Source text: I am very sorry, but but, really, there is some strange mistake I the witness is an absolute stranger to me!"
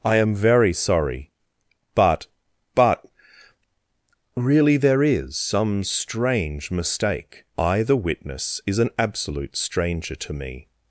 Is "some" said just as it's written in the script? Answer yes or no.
yes